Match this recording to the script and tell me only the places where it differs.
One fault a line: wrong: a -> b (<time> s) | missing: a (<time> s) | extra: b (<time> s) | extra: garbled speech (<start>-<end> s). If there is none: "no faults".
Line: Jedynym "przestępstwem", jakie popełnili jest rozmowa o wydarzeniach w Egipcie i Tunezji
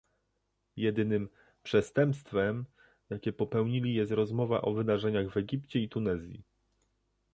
no faults